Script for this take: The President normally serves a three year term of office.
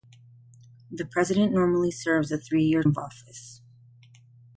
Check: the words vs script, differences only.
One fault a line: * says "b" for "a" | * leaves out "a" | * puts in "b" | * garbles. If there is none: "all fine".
* leaves out "term"